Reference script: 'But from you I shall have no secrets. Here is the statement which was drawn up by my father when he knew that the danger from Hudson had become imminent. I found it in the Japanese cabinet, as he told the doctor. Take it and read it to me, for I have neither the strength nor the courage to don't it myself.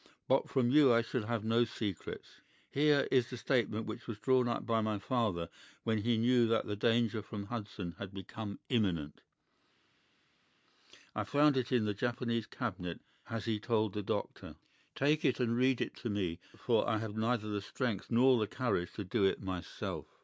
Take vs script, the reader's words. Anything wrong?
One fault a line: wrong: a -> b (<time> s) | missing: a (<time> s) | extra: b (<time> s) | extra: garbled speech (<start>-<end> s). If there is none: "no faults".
wrong: don't -> do (19.0 s)